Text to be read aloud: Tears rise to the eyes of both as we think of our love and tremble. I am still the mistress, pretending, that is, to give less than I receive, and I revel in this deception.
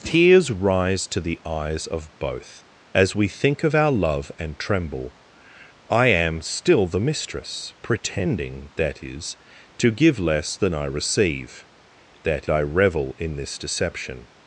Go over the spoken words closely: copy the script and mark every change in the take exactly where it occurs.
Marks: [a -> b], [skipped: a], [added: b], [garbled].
Tears rise to the eyes of both as we think of our love and tremble. I am still the mistress, pretending, that is, to give less than I receive, [and -> that] I revel in this deception.